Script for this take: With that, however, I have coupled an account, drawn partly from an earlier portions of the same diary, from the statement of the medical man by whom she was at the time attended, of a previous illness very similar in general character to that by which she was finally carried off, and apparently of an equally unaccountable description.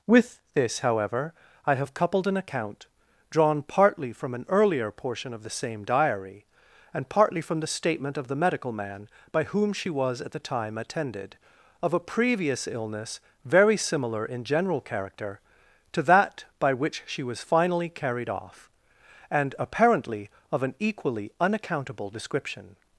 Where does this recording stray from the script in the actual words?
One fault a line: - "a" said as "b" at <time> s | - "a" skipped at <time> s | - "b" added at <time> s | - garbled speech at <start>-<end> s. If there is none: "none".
- "that" said as "this" at 0.5 s
- "portions" said as "portion" at 4.9 s
- "and partly" added at 6.9 s